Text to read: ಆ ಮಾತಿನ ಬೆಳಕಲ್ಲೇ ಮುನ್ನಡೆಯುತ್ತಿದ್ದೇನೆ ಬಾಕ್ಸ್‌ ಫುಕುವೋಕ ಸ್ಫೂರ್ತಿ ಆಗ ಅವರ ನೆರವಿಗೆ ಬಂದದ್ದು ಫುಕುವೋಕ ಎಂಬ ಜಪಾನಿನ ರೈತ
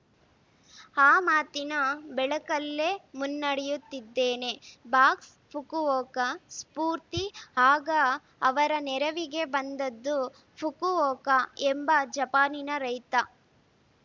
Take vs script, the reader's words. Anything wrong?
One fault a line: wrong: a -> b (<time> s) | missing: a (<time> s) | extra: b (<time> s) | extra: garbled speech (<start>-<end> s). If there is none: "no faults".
no faults